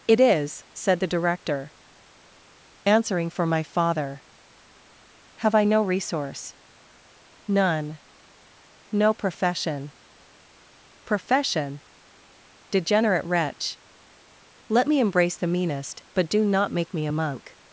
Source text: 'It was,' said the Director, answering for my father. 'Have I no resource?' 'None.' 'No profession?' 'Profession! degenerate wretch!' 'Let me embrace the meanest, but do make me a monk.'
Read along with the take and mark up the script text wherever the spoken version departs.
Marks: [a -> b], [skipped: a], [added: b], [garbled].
'It [was,' -> is] said the Director, answering for my father. 'Have I no resource?' 'None.' 'No profession?' 'Profession! degenerate wretch!' 'Let me embrace the meanest, but do [added: not] make me a monk.'